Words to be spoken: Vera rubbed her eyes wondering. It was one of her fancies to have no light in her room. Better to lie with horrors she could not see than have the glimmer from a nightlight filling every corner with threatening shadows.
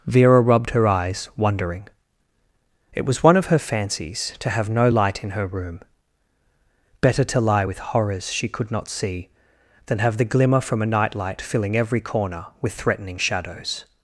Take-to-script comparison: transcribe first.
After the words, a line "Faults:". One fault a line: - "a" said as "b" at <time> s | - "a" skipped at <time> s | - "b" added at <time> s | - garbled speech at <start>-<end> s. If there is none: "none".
Vera rubbed her eyes wondering. It was one of her fancies to have no light in her room. Better to lie with horrors she could not see than have the glimmer from a nightlight filling every corner with threatening shadows.
Faults:
none